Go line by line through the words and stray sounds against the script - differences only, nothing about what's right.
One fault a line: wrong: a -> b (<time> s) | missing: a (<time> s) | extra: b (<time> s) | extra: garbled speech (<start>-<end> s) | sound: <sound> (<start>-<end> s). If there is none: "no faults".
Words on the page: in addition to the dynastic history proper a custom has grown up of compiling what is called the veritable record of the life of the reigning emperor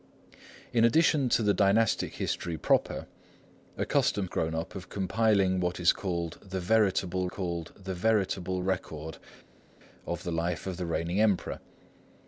missing: has (4.3 s)
extra: called the veritable (7.3 s)